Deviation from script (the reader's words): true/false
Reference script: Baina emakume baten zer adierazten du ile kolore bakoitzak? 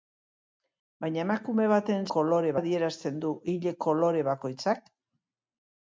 true